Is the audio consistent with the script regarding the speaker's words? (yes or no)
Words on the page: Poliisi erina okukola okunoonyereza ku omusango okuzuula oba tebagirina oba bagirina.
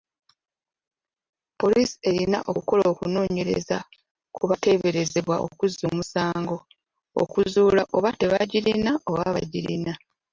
no